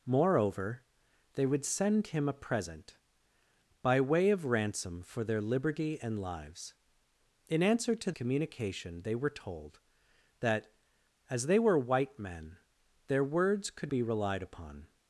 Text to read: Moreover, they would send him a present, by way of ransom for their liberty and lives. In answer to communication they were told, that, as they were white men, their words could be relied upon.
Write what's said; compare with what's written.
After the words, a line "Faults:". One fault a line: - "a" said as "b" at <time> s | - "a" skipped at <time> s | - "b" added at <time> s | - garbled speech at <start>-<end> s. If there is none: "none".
Moreover, they would send him a present, by way of ransom for their liberty and lives. In answer to communication they were told, that, as they were white men, their words could be relied upon.
Faults:
none